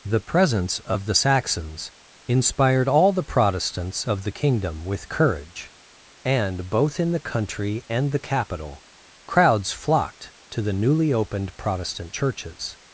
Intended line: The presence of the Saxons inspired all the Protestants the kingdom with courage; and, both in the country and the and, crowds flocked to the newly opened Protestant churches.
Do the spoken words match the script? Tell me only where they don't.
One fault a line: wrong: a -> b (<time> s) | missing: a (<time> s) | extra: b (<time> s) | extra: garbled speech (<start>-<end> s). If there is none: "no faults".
extra: of (4.1 s)
wrong: and -> capital (8.3 s)